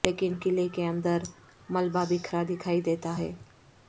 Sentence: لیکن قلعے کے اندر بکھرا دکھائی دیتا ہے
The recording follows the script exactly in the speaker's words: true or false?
false